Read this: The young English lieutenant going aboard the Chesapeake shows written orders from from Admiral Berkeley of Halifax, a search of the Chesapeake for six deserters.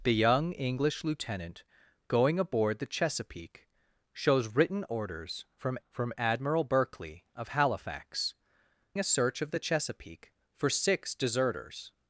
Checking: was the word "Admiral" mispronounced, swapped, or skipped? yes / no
no